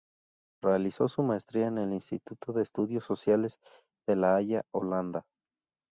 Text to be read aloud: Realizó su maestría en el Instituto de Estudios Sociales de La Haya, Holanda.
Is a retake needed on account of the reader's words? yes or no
no